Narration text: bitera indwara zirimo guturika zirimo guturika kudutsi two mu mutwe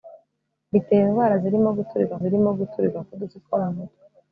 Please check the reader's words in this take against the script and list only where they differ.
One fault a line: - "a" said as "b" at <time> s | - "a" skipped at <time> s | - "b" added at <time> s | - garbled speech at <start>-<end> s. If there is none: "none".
none